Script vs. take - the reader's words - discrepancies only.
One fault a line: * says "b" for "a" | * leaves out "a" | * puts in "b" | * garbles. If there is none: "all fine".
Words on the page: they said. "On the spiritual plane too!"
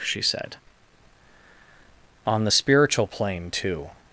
* says "she" for "they"